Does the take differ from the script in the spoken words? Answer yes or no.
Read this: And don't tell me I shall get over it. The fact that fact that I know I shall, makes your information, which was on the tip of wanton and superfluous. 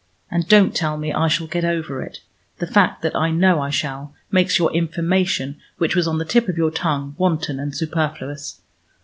yes